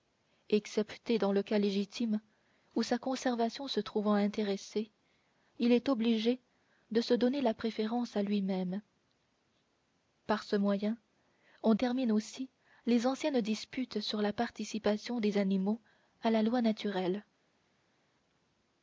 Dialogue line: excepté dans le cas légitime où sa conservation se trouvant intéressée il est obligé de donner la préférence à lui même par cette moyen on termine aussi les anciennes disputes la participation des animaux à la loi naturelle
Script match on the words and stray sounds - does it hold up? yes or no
no